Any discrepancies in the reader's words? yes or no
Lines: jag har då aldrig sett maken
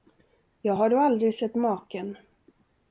no